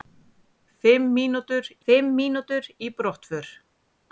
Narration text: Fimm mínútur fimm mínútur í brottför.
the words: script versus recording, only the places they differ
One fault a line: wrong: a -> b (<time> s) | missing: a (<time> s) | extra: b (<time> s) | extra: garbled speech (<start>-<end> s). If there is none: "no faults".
no faults